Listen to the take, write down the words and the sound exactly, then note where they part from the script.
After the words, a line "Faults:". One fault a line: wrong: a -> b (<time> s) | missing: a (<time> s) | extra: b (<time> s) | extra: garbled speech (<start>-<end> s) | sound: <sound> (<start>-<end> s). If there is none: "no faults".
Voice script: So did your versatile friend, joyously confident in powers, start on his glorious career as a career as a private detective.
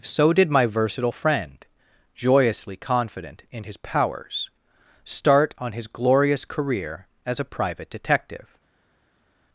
So did my versatile friend, joyously confident in his powers, start on his glorious career as a private detective.
Faults:
wrong: your -> my (0.5 s)
extra: his (3.6 s)
missing: career as a (7.5 s)